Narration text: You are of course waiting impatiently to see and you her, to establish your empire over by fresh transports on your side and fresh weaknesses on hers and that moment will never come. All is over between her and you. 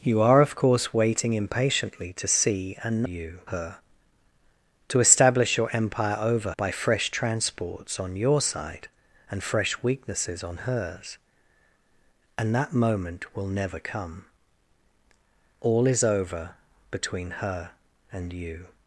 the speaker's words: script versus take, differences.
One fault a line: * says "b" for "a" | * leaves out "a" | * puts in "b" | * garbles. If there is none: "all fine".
all fine